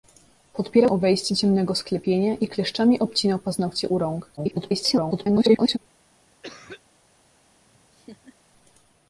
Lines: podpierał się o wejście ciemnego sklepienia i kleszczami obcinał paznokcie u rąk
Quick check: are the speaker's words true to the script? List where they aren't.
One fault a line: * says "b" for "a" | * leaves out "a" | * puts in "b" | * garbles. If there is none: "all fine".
* leaves out "się"
* garbles